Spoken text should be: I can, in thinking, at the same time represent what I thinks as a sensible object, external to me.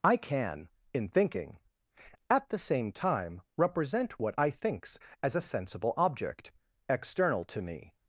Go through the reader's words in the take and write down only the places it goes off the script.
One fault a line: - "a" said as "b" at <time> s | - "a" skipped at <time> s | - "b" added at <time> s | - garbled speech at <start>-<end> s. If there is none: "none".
none